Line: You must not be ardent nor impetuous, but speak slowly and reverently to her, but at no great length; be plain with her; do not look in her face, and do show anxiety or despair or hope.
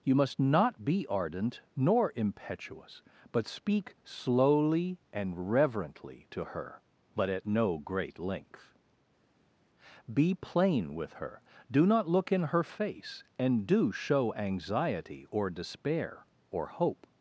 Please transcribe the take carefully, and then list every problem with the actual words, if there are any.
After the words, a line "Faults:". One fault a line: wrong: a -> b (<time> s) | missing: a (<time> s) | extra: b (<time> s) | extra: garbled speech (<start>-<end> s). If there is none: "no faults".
You must not be ardent nor impetuous, but speak slowly and reverently to her, but at no great length; be plain with her; do not look in her face, and do show anxiety or despair or hope.
Faults:
no faults